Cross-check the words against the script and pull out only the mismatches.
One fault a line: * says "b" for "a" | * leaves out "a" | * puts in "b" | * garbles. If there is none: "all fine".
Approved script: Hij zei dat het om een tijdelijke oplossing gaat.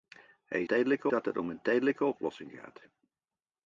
* says "tijdelijke" for "zei"